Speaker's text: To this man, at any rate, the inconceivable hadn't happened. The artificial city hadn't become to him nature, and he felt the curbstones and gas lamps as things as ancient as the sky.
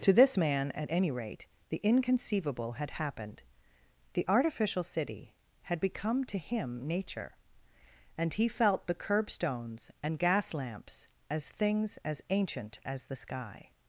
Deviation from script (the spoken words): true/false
true